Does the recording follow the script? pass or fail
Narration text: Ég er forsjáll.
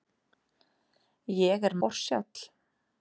pass